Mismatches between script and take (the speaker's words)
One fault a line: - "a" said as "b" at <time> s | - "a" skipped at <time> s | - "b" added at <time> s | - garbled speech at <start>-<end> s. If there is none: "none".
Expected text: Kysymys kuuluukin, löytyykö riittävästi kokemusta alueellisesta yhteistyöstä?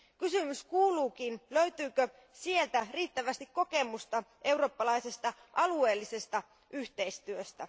- "sieltä" added at 2.3 s
- "eurooppalaisesta" added at 4.4 s